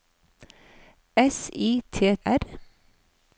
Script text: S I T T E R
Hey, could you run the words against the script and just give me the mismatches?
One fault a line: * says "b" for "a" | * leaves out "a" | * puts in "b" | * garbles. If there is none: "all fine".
* leaves out "T E"